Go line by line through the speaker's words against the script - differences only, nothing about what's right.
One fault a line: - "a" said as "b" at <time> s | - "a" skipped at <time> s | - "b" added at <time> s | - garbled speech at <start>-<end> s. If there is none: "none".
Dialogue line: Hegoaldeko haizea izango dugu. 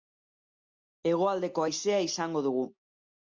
none